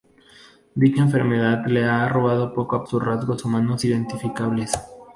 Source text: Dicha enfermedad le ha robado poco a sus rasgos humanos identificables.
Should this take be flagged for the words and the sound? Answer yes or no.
no